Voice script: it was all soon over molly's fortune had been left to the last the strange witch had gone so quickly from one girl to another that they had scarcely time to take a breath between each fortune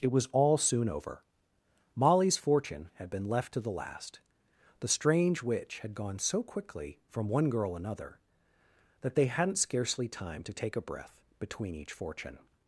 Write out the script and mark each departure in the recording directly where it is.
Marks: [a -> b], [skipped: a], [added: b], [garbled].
it was all soon over molly's fortune had been left to the last the strange witch had gone so quickly from one girl [skipped: to] another that they [had -> hadn't] scarcely time to take a breath between each fortune